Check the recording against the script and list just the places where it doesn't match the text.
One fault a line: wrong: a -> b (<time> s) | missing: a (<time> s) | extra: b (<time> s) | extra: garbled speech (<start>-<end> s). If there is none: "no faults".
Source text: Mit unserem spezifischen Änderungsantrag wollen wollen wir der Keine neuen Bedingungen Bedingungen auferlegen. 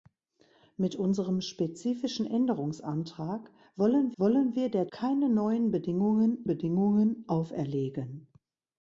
no faults